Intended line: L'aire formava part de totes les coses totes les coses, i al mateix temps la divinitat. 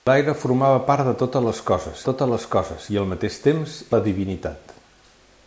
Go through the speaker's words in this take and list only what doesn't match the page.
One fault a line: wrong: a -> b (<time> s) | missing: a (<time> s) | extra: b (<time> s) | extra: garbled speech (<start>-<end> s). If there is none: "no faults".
no faults